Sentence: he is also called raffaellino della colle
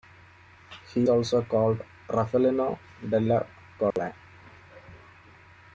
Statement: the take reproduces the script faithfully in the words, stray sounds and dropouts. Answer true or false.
false